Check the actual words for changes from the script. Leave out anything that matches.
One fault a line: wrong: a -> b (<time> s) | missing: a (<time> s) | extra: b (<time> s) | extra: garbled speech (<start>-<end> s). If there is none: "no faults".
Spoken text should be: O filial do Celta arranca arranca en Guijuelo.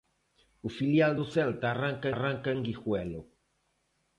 no faults